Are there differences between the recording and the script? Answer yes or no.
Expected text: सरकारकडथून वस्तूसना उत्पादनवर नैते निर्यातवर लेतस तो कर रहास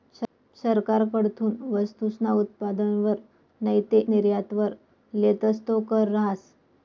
no